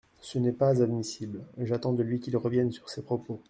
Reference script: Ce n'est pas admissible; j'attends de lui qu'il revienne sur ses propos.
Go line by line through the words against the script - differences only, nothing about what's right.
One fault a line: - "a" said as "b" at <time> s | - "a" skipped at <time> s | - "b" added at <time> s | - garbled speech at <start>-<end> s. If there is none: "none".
none